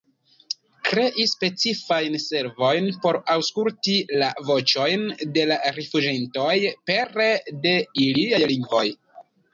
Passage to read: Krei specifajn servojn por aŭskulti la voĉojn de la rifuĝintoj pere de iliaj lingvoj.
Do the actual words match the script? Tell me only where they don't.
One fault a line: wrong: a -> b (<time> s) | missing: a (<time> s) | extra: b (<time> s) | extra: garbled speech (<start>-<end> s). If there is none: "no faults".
no faults